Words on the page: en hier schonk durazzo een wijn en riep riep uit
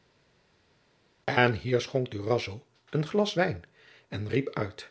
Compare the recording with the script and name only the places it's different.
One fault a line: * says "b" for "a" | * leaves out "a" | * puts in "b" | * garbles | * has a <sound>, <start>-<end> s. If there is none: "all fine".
* puts in "glas"
* leaves out "riep"